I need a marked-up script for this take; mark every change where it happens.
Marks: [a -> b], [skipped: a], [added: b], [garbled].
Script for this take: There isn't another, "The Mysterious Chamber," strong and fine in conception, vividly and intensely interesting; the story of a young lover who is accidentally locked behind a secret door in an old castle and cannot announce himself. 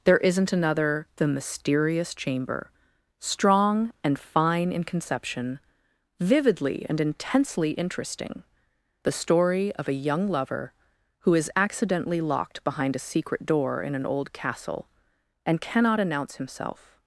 There isn't another, "The Mysterious Chamber," strong and fine in conception, vividly and intensely interesting; the story of a young lover who is accidentally locked behind a secret door in an old castle and cannot announce himself.